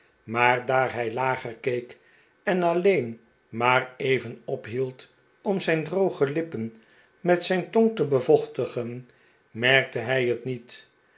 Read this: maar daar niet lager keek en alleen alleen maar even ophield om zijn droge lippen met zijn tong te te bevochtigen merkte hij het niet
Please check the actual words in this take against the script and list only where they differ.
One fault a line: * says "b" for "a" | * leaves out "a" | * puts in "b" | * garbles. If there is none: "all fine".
* says "hij" for "niet"
* leaves out "alleen"
* leaves out "te"